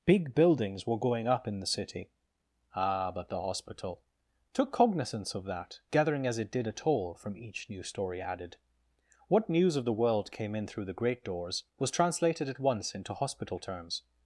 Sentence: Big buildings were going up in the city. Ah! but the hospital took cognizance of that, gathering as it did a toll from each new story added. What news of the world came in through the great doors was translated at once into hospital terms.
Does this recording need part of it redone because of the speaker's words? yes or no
no